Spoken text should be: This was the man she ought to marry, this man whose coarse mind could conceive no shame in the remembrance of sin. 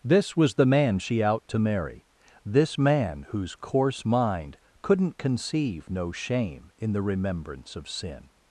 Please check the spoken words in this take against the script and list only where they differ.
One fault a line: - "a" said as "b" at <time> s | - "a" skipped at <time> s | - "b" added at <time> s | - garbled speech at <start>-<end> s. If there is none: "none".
- "ought" said as "out" at 1.2 s
- "could" said as "couldn't" at 4.8 s